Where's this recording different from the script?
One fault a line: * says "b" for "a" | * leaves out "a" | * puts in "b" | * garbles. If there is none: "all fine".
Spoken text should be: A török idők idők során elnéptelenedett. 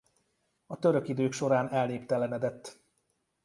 * leaves out "idők"